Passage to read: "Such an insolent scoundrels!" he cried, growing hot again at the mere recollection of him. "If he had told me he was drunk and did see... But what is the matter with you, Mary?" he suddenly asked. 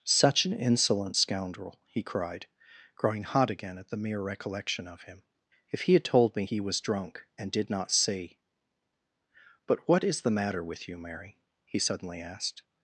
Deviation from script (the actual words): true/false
true